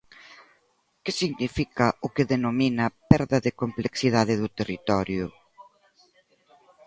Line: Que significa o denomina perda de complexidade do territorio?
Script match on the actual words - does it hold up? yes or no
no